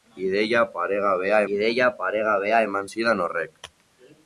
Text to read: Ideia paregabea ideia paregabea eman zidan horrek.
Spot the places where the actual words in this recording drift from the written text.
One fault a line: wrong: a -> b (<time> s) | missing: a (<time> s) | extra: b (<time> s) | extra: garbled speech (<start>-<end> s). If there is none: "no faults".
no faults